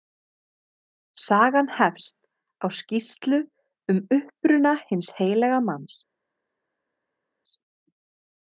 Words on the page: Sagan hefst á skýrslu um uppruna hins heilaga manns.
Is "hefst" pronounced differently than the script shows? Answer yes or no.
no